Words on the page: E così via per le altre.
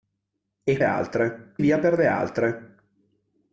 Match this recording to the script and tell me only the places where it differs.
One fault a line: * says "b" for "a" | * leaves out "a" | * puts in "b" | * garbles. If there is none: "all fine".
* says "altre" for "così"